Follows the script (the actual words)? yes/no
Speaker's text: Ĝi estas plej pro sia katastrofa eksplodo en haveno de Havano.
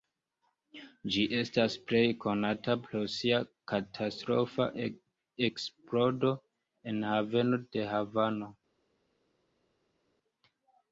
no